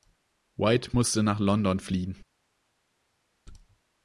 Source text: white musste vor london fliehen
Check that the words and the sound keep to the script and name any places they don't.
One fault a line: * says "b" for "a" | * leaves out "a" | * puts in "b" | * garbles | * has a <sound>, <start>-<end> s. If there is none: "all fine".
* says "nach" for "vor"